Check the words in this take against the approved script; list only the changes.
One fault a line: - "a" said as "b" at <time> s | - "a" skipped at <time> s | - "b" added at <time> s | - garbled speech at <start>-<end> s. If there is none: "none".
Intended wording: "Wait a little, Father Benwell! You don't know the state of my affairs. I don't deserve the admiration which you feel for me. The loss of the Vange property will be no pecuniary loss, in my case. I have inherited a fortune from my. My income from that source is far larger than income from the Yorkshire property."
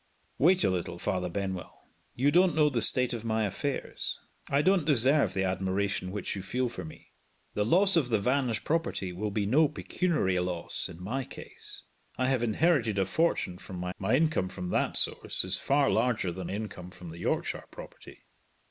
none